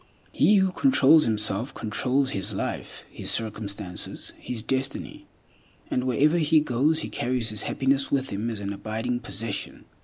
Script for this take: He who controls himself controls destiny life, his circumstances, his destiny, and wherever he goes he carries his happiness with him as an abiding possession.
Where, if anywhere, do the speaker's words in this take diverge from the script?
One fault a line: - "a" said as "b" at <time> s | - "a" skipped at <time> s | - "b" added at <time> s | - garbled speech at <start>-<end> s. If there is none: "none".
- "destiny" said as "his" at 2.3 s